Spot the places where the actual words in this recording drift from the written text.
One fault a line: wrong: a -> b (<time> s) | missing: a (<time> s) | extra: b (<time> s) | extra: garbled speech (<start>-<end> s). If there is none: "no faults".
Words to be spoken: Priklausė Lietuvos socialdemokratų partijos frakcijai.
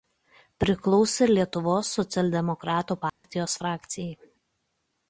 no faults